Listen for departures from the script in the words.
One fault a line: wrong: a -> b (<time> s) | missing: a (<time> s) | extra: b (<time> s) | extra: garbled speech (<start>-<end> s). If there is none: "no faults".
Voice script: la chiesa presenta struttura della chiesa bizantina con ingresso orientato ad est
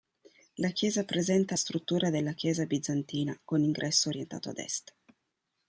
no faults